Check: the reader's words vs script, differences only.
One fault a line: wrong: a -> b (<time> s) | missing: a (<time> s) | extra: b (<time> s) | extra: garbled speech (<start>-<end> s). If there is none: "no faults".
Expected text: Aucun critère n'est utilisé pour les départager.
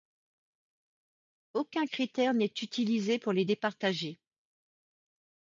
no faults